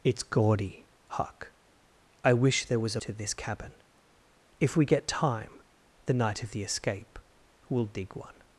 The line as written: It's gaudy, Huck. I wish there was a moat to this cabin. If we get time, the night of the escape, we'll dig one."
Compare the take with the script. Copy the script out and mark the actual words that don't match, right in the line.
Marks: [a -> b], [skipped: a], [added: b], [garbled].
It's gaudy, Huck. I wish there was a [skipped: moat] to this cabin. If we get time, the night of the escape, we'll dig one."